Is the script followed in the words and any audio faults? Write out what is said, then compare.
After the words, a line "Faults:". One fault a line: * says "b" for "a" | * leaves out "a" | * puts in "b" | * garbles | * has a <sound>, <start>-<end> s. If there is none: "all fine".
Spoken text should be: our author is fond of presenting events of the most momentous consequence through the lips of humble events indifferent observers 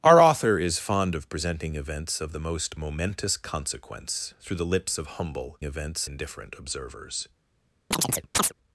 our author is fond of presenting events of the most momentous consequence through the lips of humble events indifferent observers
Faults:
* has a chirp, 7.9-8.5 s